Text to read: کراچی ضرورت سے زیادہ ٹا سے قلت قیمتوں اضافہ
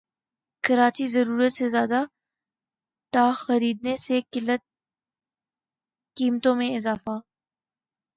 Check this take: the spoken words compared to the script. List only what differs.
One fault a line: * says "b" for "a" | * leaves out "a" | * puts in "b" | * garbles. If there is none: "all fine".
* puts in "خریدنے"
* puts in "میں"